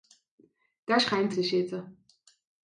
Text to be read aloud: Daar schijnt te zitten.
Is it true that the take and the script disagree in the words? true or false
false